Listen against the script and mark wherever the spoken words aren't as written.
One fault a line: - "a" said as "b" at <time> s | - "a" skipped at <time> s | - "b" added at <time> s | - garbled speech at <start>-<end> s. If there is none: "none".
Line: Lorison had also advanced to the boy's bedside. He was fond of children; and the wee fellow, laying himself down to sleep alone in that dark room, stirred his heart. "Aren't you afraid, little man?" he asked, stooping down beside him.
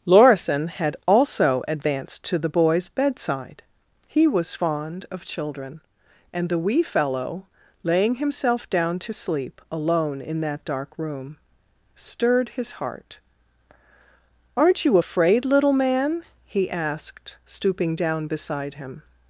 none